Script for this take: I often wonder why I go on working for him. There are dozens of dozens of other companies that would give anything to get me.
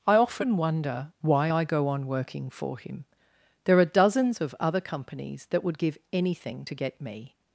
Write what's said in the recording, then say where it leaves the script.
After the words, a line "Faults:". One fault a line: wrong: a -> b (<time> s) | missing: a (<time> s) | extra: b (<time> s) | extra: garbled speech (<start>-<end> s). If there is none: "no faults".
I often wonder why I go on working for him. There are dozens of other companies that would give anything to get me.
Faults:
missing: dozens of (4.5 s)